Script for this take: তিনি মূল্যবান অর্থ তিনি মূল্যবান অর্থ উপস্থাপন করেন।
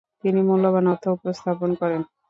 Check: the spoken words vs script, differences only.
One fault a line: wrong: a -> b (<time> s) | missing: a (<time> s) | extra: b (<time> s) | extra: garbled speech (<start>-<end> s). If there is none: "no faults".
missing: তিনি মূল্যবান অর্থ (1.0 s)